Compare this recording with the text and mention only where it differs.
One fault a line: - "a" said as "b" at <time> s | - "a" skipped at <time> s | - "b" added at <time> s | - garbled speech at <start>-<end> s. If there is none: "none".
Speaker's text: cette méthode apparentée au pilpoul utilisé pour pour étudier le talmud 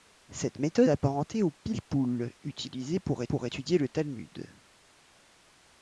none